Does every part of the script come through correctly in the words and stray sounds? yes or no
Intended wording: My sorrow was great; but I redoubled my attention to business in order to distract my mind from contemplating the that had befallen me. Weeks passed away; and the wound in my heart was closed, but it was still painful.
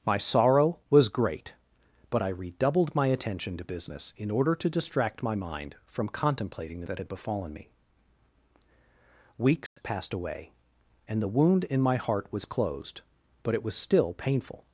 no